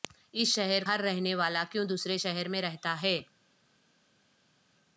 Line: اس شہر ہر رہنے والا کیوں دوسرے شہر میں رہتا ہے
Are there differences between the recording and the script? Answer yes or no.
no